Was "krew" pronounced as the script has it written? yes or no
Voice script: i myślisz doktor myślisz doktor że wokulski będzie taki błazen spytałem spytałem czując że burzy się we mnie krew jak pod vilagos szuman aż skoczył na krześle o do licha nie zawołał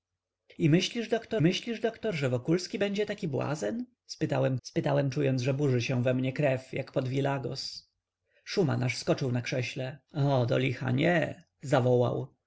yes